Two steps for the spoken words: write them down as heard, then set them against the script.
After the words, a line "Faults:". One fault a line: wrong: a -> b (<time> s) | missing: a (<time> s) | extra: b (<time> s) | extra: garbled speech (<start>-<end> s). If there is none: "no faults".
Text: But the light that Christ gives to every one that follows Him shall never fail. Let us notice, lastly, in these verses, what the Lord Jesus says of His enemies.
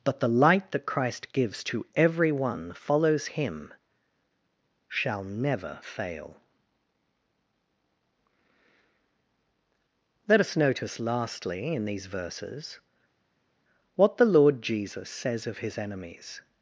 But the light that Christ gives to every one follows Him shall never fail. Let us notice, lastly, in these verses, what the Lord Jesus says of His enemies.
Faults:
missing: that (2.7 s)